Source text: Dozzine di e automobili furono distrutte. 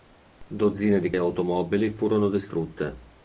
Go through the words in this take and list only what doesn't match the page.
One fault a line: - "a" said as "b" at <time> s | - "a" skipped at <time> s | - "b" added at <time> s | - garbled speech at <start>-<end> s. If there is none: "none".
none